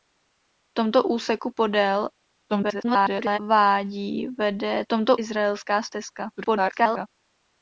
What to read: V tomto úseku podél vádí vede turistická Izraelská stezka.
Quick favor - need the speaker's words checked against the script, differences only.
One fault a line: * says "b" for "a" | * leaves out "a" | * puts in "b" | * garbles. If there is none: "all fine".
* garbles
* says "tomto" for "turistická"
* garbles